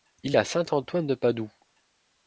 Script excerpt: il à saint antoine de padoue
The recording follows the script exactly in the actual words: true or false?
true